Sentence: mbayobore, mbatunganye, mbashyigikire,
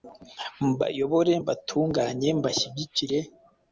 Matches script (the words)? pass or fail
pass